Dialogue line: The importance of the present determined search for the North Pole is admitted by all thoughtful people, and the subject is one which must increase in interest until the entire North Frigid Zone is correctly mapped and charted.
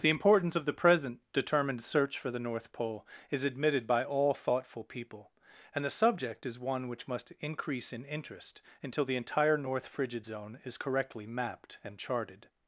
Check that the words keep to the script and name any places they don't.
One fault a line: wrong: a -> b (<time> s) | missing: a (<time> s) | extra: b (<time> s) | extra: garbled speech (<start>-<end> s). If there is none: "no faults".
no faults